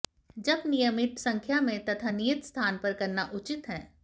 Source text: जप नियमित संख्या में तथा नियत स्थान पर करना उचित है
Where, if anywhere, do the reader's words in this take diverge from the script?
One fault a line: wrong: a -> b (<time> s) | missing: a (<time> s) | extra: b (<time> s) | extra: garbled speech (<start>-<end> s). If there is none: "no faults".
no faults